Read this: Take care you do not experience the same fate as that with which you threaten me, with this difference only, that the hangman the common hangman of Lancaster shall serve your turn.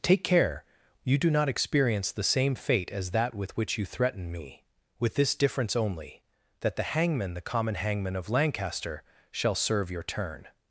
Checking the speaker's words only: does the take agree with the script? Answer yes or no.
yes